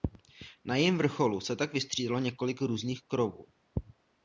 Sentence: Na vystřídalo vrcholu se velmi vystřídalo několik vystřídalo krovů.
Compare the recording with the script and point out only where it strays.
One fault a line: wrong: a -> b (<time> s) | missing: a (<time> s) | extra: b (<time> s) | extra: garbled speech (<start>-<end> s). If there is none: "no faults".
wrong: vystřídalo -> jejím (0.8 s)
wrong: velmi -> tak (1.6 s)
wrong: vystřídalo -> různých (2.6 s)